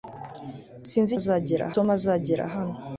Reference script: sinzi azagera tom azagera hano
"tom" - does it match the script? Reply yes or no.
yes